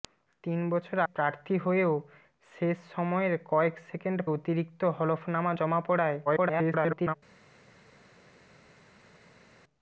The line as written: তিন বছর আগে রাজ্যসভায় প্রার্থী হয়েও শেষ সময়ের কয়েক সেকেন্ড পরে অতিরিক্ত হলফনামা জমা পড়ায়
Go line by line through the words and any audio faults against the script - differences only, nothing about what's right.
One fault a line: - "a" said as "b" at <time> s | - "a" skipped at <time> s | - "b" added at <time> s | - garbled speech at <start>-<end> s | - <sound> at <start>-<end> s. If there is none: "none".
- "আগে রাজ্যসভায়" skipped at 1.0 s
- "পরে" skipped at 4.2 s
- garbled speech at 6.3-7.1 s